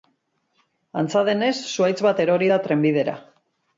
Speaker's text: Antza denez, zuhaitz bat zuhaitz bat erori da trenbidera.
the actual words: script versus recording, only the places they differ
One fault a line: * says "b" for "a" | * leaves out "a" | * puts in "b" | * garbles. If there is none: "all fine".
* leaves out "zuhaitz bat"